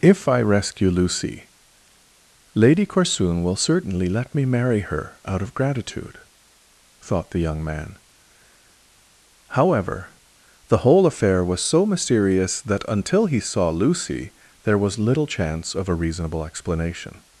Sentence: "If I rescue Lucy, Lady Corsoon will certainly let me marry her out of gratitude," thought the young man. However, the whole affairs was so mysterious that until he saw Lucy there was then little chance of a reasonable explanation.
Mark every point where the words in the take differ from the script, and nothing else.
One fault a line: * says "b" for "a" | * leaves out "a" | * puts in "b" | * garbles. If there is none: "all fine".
* says "affair" for "affairs"
* leaves out "then"